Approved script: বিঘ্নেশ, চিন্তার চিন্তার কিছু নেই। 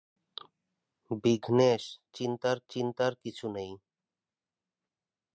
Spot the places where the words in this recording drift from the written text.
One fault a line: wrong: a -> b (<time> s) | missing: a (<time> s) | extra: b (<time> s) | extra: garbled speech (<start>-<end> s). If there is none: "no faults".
no faults